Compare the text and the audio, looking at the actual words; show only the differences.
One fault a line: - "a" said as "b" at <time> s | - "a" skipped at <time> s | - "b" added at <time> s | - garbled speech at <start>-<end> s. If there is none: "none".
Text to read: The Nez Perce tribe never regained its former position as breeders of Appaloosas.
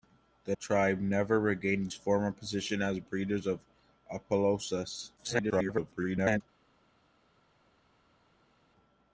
- "Nez Perce" skipped at 0.6 s
- garbled speech at 5.2-6.4 s